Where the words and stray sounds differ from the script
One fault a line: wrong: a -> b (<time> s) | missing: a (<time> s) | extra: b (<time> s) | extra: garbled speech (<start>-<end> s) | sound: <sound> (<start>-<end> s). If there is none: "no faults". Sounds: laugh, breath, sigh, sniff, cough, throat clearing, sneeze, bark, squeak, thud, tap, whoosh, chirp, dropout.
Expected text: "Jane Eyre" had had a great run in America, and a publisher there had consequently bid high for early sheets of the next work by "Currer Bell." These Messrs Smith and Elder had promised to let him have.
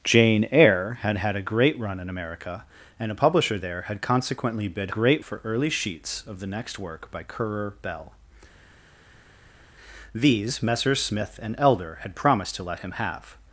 wrong: high -> great (4.9 s)